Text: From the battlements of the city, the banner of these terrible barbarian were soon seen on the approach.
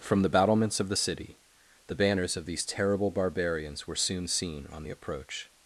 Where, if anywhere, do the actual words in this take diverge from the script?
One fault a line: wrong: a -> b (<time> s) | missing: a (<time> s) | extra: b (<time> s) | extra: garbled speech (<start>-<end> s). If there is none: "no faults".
wrong: banner -> banners (1.9 s)
wrong: barbarian -> barbarians (3.1 s)